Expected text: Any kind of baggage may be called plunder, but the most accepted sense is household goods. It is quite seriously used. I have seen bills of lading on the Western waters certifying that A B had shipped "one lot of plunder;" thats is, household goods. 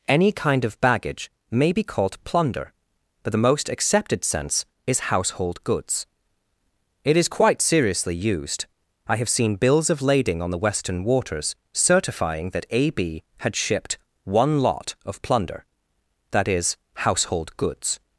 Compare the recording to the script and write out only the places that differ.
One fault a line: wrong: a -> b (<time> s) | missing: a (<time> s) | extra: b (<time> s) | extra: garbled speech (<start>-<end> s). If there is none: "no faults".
wrong: thats -> that (16.3 s)